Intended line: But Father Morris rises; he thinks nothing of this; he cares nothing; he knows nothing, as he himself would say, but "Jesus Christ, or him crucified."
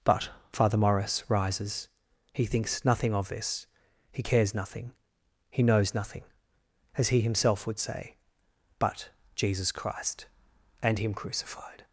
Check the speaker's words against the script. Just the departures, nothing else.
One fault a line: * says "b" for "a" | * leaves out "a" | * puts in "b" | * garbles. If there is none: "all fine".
* says "and" for "or"